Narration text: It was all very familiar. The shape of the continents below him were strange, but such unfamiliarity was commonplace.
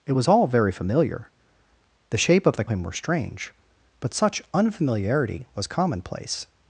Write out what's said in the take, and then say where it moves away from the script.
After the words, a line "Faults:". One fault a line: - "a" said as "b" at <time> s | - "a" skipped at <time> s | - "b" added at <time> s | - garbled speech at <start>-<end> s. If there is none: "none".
It was all very familiar. The shape of the him were strange, but such unfamiliarity was commonplace.
Faults:
- "continents below" skipped at 2.6 s